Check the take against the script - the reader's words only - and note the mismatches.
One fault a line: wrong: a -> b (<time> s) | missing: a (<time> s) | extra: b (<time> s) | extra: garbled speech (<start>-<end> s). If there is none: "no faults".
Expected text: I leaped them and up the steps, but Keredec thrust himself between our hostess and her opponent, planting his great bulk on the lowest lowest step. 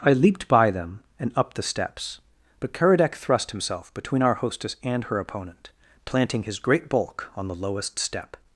extra: by (0.5 s)
missing: lowest (8.0 s)